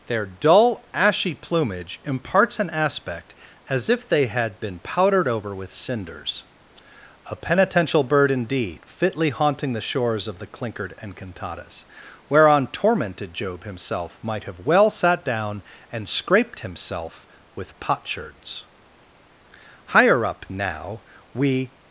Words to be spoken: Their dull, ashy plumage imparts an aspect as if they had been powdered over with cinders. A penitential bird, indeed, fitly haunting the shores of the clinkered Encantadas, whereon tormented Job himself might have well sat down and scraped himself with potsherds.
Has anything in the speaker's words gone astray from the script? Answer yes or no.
yes